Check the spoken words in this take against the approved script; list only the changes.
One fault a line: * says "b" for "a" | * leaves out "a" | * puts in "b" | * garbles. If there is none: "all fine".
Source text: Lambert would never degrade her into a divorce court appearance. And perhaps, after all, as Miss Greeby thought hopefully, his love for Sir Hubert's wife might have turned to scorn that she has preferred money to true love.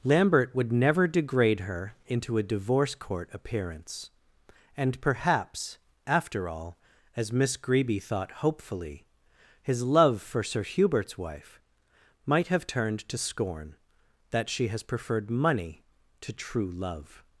all fine